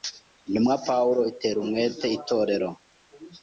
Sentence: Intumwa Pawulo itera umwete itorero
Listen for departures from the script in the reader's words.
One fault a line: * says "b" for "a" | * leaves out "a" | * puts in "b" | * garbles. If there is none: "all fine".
all fine